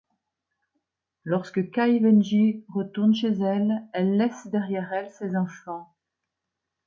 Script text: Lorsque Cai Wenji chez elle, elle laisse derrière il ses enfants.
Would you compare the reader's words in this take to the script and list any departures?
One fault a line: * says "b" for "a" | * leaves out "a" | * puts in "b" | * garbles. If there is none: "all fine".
* puts in "retourne"
* says "elle" for "il"